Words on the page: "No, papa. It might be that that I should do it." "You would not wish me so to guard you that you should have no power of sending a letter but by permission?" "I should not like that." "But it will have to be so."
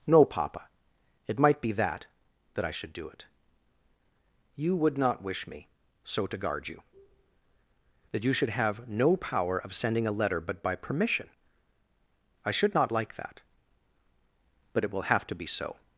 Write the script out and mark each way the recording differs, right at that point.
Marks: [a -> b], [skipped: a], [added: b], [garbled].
"No, papa. It might be that that I should do it." "You would not wish me so to guard you that you should have no power of sending a letter but by permission?" "I should not like that." "But it will have to be so."